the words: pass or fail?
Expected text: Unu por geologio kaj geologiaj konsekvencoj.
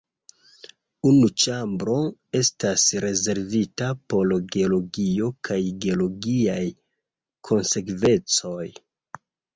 fail